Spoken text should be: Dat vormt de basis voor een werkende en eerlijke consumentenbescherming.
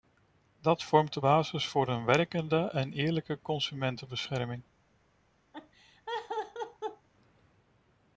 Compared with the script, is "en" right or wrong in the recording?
right